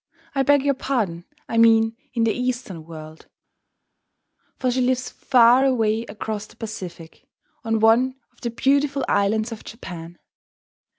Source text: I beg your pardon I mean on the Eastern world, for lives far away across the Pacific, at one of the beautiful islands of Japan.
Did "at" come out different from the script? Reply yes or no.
yes